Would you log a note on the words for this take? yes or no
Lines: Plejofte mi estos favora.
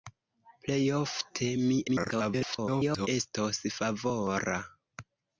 yes